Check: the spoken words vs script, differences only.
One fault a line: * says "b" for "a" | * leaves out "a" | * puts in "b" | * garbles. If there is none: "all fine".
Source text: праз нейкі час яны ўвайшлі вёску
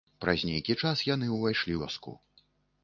all fine